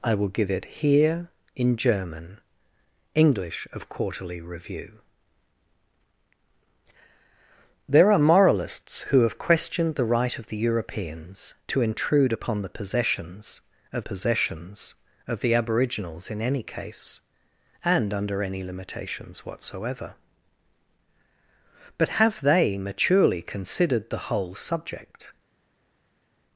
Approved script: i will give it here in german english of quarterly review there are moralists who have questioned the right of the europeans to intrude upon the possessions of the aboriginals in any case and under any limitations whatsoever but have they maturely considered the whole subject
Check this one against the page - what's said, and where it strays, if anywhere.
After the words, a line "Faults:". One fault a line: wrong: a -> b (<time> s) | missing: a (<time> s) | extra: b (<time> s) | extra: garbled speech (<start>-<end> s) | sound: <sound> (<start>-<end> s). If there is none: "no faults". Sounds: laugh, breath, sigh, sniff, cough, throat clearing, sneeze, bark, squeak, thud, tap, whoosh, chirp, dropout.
i will give it here in german english of quarterly review there are moralists who have questioned the right of the europeans to intrude upon the possessions of possessions of the aboriginals in any case and under any limitations whatsoever but have they maturely considered the whole subject
Faults:
extra: possessions of (14.0 s)